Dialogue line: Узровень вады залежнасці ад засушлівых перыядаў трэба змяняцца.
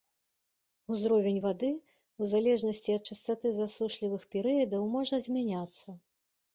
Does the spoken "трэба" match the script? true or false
false